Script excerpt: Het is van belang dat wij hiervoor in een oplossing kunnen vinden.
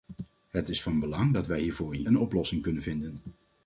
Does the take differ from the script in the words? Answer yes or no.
no